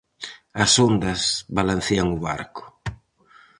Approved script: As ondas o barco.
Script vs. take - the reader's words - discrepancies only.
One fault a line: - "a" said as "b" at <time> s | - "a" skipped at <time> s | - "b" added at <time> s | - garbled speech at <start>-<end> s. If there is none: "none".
- "balancean" added at 1.6 s